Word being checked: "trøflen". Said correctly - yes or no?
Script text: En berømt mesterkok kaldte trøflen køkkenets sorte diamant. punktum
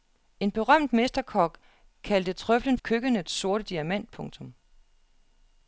yes